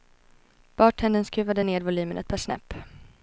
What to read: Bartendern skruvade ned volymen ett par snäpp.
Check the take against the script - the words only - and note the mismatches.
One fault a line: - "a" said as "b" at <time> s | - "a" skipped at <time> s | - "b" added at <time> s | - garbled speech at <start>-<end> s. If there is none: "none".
none